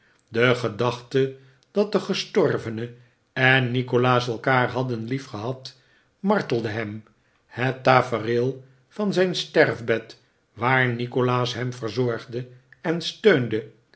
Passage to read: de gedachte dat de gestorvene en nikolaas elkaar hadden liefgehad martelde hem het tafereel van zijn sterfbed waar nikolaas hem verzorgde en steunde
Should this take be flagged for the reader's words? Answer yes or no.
no